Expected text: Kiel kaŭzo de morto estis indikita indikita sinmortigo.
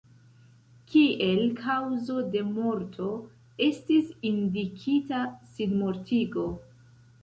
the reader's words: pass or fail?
fail